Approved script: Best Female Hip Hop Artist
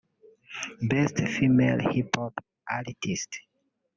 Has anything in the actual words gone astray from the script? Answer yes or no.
no